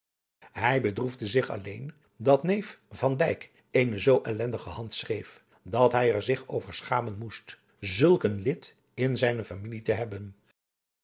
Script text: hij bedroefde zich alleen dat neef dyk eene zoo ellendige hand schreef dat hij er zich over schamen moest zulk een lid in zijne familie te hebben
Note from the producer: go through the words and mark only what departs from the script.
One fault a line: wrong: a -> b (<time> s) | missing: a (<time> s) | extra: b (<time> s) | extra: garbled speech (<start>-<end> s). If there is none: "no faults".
extra: van (2.9 s)